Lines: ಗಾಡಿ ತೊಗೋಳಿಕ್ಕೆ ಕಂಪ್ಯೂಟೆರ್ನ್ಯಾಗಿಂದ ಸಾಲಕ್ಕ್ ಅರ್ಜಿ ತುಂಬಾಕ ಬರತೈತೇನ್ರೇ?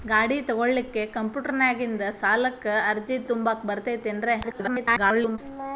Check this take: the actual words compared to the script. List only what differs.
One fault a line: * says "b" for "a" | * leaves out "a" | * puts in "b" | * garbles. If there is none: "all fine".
* garbles